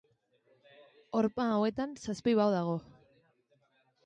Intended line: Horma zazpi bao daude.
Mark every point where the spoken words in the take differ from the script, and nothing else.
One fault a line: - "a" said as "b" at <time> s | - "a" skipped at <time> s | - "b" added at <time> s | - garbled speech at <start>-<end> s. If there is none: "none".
- "hauetan" added at 1.6 s
- "daude" said as "dago" at 2.6 s